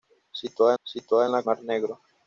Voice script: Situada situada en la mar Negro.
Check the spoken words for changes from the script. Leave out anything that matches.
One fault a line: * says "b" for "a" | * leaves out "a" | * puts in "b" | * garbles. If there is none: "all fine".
all fine